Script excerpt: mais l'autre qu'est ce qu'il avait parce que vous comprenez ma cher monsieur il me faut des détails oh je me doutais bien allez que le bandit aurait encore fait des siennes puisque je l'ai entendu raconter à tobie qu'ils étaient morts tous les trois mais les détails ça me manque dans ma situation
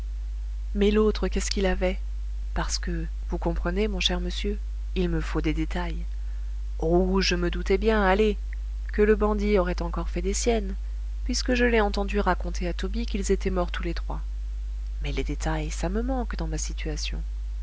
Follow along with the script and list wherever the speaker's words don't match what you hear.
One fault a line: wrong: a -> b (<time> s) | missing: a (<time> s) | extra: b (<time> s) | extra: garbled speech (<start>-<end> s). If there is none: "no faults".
wrong: ma -> mon (3.9 s)